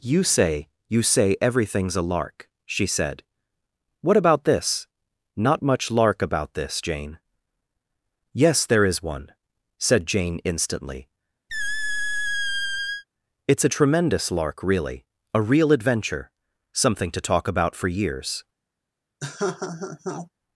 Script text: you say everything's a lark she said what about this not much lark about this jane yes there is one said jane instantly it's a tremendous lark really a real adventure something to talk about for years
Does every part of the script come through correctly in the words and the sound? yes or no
no